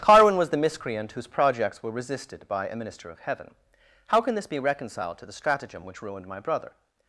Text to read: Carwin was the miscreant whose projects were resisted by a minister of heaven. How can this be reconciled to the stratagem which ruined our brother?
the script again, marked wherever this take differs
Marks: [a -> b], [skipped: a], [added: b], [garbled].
Carwin was the miscreant whose projects were resisted by a minister of heaven. How can this be reconciled to the stratagem which ruined [our -> my] brother?